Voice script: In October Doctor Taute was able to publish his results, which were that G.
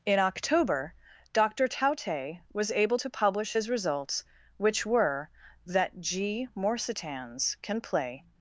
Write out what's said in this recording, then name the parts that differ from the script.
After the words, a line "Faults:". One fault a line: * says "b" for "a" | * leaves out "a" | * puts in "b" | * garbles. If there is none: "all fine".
In October Doctor Taute was able to publish his results, which were that G. morsitans can play
Faults:
* puts in "morsitans can play"